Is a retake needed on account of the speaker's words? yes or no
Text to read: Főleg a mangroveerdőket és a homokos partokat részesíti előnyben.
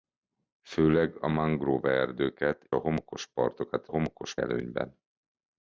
yes